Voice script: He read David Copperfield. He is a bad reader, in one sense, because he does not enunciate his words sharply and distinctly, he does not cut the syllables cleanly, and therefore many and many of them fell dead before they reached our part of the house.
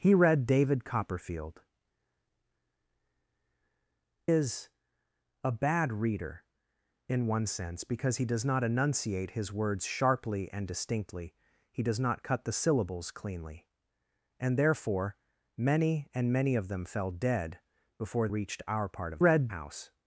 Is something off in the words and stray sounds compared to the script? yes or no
yes